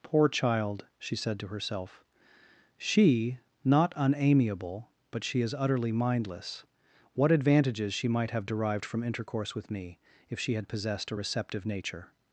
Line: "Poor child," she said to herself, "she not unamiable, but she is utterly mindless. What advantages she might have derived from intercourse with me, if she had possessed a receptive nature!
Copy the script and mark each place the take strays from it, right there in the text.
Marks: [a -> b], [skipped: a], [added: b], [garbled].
"Poor child," she said to herself, "she not unamiable, but she is utterly mindless. What advantages she might have derived from intercourse with me, if she had possessed a receptive nature!